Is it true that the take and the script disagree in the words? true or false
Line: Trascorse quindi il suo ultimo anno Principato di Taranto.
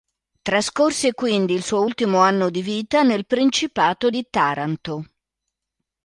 true